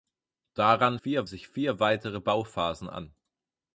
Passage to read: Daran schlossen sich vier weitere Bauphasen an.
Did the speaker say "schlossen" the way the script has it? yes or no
no